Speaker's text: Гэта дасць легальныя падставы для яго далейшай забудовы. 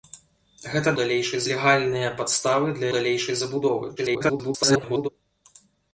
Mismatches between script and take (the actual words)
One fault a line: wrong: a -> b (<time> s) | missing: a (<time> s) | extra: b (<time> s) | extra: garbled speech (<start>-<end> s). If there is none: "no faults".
wrong: дасць -> далейшай (1.0 s)
missing: яго (2.9 s)
extra: garbled speech (4.0-5.1 s)